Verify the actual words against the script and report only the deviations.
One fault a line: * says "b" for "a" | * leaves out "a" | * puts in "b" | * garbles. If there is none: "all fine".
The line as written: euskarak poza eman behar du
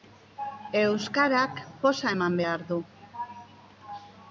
all fine